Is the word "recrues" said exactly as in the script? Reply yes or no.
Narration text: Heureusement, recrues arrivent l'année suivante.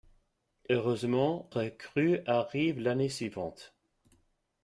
yes